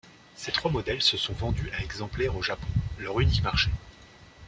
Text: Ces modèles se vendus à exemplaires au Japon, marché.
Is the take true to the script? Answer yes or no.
no